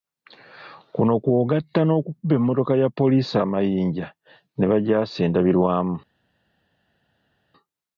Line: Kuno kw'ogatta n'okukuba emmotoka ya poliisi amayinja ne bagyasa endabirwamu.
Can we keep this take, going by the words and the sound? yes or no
yes